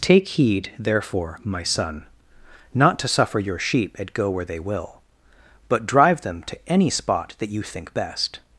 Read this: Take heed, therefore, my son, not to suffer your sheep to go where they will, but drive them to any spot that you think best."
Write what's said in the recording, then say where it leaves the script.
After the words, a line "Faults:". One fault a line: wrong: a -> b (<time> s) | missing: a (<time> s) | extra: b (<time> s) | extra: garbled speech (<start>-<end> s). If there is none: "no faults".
Take heed, therefore, my son, not to suffer your sheep at go where they will, but drive them to any spot that you think best."
Faults:
wrong: to -> at (4.0 s)